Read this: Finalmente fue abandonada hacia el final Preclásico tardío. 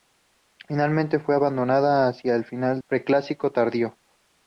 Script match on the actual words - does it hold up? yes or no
yes